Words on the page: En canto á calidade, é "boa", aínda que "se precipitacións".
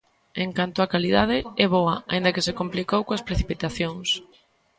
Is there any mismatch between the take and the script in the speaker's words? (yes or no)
yes